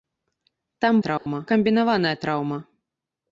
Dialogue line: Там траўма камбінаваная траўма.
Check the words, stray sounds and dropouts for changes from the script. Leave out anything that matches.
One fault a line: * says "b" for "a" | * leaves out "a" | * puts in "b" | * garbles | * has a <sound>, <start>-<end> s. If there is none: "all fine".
* has a dropout, 1.2-1.3 s